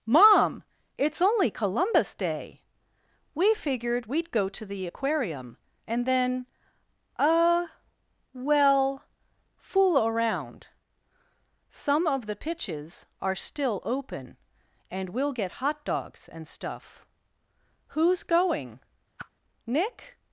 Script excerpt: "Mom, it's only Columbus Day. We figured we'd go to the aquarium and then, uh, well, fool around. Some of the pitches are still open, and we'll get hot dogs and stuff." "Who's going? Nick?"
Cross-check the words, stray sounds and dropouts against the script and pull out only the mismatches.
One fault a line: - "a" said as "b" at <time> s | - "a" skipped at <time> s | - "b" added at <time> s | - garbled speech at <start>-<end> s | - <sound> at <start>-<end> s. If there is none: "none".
- whoosh at 19.2-19.3 s